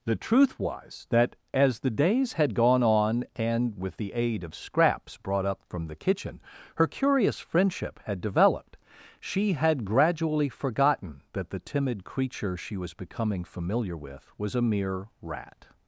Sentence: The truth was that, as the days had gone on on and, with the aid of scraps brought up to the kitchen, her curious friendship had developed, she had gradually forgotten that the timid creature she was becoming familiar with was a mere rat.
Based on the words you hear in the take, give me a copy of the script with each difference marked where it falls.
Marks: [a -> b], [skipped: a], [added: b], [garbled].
The truth was that, as the days had gone on [skipped: on] and, with the aid of scraps brought up [to -> from] the kitchen, her curious friendship had developed, she had gradually forgotten that the timid creature she was becoming familiar with was a mere rat.